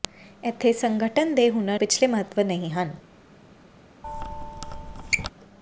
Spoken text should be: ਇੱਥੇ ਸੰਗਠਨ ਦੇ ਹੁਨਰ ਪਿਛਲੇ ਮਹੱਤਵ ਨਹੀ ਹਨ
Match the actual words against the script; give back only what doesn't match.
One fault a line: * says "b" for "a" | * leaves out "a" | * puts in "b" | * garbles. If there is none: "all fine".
all fine